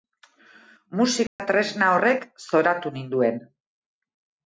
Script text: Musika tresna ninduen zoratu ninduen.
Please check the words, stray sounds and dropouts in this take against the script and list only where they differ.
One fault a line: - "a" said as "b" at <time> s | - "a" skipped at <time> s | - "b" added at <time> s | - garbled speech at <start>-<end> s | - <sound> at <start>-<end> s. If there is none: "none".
- dropout at 1.3-1.4 s
- "ninduen" said as "horrek" at 2.0 s